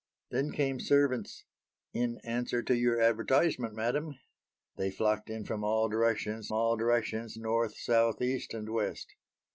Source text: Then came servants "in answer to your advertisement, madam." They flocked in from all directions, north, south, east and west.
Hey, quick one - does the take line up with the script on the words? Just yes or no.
no